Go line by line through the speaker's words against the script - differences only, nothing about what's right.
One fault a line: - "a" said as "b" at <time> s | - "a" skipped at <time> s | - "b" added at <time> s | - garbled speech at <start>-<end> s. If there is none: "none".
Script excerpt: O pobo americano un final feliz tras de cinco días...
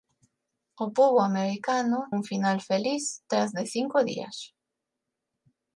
none